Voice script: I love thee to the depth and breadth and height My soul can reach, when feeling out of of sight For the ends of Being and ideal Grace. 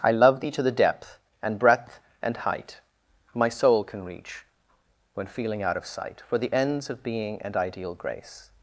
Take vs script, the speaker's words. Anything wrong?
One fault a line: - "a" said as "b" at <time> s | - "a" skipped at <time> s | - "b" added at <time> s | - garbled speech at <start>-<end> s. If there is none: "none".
- "of" skipped at 5.8 s